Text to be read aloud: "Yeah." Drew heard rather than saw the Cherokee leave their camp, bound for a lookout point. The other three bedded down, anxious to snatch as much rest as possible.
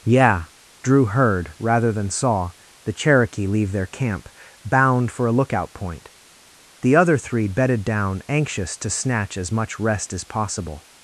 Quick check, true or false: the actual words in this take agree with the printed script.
true